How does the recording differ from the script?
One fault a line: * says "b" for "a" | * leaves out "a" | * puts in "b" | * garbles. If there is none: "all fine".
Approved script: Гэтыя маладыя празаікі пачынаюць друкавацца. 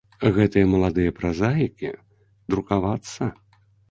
* leaves out "пачынаюць"